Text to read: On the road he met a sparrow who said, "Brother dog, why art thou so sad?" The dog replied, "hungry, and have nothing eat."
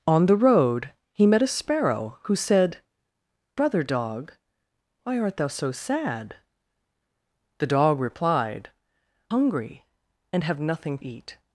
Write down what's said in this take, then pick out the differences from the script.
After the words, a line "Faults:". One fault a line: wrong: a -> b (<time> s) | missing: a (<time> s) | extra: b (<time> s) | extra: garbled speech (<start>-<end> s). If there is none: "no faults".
On the road he met a sparrow who said, "Brother dog, why art thou so sad?" The dog replied, "hungry, and have nothing eat."
Faults:
no faults